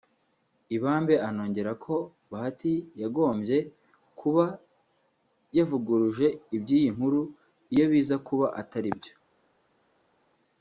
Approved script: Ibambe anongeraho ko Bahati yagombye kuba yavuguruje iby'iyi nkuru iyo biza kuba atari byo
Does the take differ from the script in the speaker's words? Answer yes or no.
no